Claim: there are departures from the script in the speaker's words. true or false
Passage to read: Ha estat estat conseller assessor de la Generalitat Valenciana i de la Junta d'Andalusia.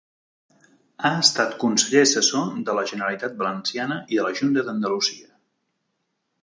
true